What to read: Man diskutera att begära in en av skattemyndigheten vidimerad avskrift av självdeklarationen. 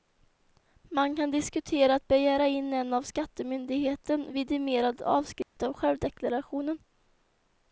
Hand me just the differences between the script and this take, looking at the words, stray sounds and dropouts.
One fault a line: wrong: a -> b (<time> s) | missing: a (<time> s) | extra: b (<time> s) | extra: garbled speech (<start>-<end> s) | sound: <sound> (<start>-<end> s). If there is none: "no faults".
extra: kan (1.1 s)
sound: dropout (5.4-5.6 s)